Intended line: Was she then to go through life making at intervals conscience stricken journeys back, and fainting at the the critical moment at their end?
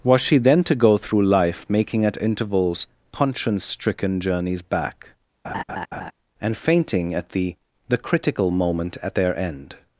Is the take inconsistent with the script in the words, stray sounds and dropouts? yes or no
yes